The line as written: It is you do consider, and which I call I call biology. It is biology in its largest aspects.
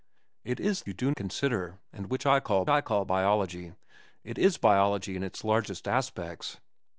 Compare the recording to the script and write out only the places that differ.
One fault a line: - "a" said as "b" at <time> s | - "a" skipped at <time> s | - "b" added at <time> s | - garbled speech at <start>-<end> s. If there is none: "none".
none